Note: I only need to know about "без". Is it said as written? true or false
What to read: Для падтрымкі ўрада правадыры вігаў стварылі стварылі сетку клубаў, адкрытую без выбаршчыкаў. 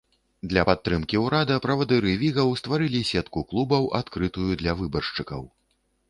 false